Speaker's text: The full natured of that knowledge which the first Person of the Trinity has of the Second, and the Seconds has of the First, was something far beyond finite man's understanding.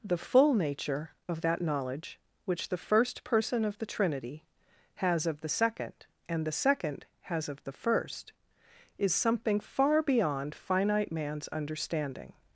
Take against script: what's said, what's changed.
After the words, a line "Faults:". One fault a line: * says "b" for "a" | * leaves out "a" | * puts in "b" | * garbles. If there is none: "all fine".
The full nature of that knowledge which the first Person of the Trinity has of the Second, and the Second has of the First, is something far beyond finite man's understanding.
Faults:
* says "nature" for "natured"
* says "Second" for "Seconds"
* says "is" for "was"